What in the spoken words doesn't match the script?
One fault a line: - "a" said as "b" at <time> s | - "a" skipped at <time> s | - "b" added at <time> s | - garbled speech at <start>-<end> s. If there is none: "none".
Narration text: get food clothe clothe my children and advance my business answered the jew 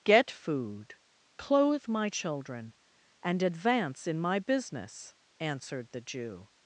- "clothe" skipped at 1.9 s
- "in" added at 4.1 s